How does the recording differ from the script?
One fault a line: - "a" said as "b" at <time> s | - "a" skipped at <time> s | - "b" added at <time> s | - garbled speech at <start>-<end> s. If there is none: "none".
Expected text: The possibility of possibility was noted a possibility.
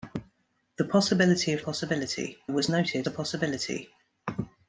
none